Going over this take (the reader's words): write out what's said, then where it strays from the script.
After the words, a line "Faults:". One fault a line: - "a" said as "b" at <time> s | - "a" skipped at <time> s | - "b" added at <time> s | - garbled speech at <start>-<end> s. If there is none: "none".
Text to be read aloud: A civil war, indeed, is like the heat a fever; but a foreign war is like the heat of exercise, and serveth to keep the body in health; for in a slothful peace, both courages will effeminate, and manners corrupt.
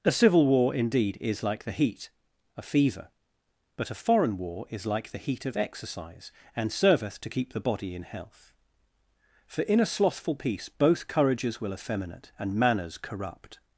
A civil war, indeed, is like the heat a fever; but a foreign war is like the heat of exercise, and serveth to keep the body in health; for in a slothful peace, both courages will effeminate, and manners corrupt.
Faults:
none